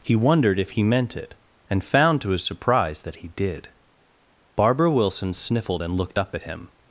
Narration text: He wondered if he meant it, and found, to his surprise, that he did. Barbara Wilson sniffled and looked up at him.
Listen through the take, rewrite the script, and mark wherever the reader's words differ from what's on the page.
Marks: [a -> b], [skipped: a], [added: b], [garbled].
He wondered if he meant it, and found, to his surprise, that he did. Barbara Wilson sniffled and looked up at him.